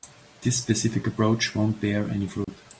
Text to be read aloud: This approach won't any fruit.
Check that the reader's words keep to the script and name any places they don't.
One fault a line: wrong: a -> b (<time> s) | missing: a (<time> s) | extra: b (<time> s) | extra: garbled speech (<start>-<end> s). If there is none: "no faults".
extra: specific (0.6 s)
extra: bear (1.8 s)